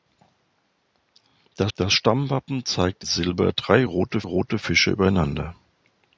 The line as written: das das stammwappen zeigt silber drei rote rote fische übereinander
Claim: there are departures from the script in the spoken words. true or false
false